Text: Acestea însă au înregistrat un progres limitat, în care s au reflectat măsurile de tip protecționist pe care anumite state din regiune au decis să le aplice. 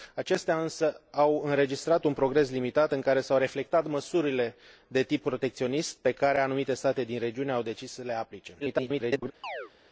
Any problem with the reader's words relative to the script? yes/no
yes